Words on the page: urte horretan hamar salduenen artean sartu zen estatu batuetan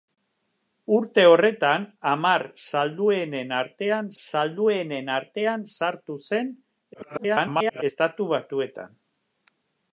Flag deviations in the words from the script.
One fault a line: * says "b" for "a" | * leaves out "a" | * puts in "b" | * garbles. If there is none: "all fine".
* puts in "salduenen artean"
* garbles